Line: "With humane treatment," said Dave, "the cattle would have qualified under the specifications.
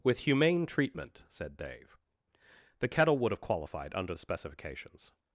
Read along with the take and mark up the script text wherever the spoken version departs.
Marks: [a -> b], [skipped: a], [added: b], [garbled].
"With humane treatment," said Dave, "the [cattle -> kettle] would have qualified under the specifications.